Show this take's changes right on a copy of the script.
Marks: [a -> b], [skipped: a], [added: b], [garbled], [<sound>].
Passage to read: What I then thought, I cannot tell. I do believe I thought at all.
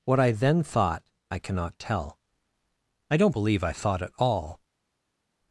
What I then thought, I cannot tell. I [do -> don't] believe I thought at all.